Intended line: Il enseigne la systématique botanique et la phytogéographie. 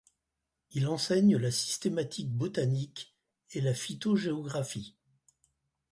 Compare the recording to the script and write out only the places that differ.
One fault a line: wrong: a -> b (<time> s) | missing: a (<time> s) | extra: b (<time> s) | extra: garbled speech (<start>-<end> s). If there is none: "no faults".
no faults